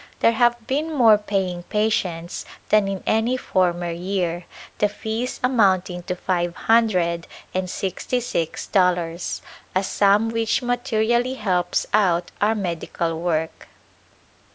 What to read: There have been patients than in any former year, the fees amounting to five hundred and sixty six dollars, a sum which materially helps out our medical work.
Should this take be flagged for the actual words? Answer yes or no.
yes